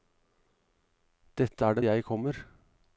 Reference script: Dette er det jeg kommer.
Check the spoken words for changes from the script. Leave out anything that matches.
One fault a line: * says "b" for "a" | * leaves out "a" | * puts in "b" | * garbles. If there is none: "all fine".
all fine